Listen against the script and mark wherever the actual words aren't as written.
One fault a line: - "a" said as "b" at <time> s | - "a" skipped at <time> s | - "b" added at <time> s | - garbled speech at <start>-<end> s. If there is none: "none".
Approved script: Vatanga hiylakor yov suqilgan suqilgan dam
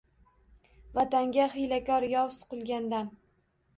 - "suqilgan" skipped at 2.9 s